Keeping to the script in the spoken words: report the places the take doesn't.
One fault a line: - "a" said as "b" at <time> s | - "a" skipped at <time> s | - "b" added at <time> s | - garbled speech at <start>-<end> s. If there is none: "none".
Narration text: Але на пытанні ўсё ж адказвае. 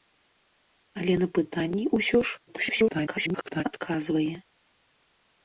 - garbled speech at 2.5-3.6 s